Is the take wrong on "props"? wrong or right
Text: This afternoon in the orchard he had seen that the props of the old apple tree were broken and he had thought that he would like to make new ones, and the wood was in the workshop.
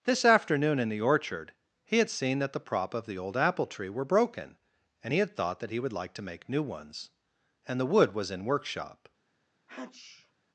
wrong